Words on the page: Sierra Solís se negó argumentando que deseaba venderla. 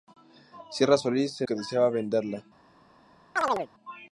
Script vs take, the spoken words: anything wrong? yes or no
yes